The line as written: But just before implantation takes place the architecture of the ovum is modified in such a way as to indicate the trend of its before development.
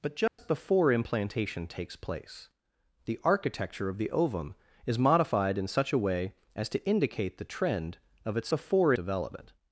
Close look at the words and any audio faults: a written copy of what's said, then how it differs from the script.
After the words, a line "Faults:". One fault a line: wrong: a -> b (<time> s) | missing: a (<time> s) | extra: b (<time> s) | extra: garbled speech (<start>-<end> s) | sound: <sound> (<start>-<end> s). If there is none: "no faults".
But just before implantation takes place the architecture of the ovum is modified in such a way as to indicate the trend of its before development.
Faults:
sound: dropout (0.3-0.4 s)